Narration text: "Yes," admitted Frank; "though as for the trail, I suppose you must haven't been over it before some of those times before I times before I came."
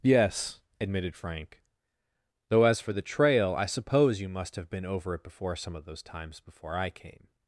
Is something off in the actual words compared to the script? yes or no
yes